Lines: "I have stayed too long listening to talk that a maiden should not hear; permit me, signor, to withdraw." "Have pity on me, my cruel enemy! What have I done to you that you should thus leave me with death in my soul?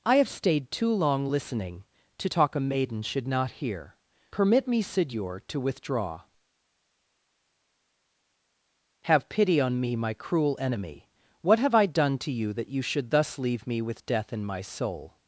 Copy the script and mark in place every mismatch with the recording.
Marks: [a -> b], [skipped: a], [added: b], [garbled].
"I have stayed too long listening to talk [skipped: that] a maiden should not hear; permit me, signor, to withdraw." "Have pity on me, my cruel enemy! What have I done to you that you should thus leave me with death in my soul?